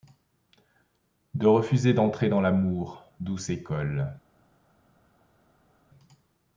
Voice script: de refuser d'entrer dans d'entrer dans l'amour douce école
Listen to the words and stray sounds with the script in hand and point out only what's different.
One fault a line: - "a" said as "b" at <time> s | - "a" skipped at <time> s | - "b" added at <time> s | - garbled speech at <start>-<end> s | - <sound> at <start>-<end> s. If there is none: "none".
- "d'entrer dans" skipped at 2.4 s